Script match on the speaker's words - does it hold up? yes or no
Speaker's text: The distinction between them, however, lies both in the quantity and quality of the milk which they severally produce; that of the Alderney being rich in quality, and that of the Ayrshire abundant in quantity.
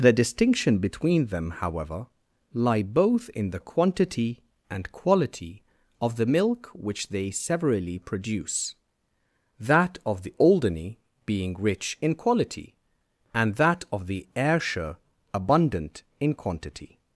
no